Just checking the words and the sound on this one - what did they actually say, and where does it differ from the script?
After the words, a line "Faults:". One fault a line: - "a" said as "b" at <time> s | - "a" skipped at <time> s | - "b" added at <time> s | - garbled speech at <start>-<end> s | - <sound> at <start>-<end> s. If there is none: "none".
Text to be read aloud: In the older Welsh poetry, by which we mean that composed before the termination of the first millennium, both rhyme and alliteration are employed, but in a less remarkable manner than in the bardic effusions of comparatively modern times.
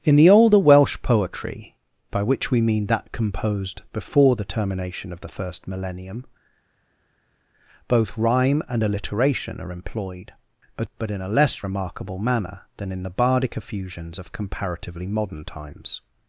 In the older Welsh poetry, by which we mean that composed before the termination of the first millennium, both rhyme and alliteration are employed, but but in a less remarkable manner than in the bardic effusions of comparatively modern times.
Faults:
- "but" added at 11.0 s